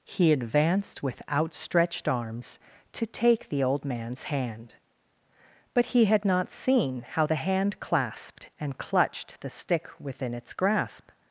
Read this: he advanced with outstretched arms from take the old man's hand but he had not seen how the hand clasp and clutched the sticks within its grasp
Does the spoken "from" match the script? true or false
false